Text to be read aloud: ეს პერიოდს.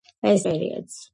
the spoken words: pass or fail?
pass